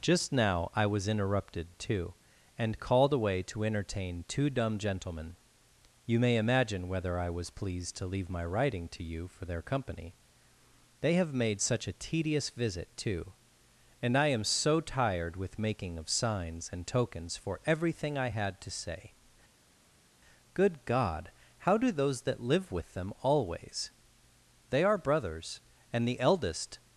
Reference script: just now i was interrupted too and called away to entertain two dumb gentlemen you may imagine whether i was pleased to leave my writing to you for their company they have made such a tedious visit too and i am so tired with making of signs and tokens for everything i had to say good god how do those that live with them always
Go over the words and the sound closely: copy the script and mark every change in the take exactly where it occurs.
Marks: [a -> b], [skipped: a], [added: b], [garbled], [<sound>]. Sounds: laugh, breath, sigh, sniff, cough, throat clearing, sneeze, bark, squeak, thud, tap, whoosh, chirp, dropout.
just now i was interrupted too and called away to entertain two dumb gentlemen you may imagine whether i was pleased to leave my writing to you for their company they have made such a tedious visit too and i am so tired with making of signs and tokens for everything i had to say good god how do those that live with them always [added: they are brothers and the eldest]